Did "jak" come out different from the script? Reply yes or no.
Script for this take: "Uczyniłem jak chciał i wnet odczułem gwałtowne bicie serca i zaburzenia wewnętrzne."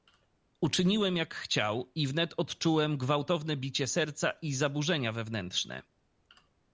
no